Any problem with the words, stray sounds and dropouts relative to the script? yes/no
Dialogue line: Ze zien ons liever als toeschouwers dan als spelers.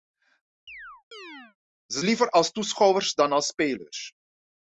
yes